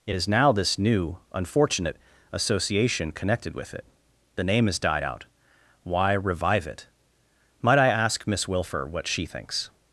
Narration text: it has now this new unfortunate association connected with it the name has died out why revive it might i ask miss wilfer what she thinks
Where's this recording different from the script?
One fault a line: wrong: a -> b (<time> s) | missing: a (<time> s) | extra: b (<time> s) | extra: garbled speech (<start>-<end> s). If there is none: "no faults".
wrong: has -> is (0.1 s)